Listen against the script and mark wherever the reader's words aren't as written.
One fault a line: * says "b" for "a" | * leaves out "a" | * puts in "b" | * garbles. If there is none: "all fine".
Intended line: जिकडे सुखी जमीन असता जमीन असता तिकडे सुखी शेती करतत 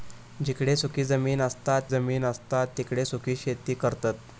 all fine